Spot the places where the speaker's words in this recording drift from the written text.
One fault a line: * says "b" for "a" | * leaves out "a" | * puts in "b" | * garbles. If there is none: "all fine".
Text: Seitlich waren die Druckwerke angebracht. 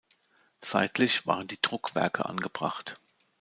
all fine